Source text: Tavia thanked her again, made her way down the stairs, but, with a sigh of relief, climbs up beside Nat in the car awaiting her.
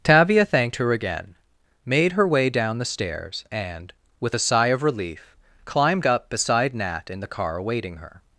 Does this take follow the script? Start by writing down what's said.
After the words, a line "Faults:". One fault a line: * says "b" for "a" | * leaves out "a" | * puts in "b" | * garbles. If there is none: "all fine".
Tavia thanked her again, made her way down the stairs, and, with a sigh of relief, climbed up beside Nat in the car awaiting her.
Faults:
* says "and" for "but"
* says "climbed" for "climbs"